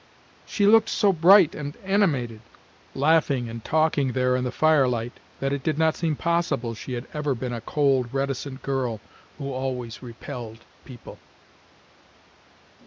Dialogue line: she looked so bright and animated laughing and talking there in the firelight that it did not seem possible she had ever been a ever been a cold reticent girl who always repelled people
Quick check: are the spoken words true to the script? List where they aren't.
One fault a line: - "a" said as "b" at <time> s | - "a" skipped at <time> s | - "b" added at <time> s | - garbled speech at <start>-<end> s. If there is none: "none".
- "ever been a" skipped at 7.6 s